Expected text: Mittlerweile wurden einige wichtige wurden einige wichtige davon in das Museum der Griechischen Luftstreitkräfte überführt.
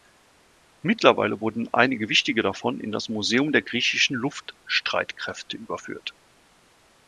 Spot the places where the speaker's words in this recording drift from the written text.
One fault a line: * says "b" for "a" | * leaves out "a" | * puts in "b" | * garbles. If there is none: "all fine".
* leaves out "wurden einige wichtige"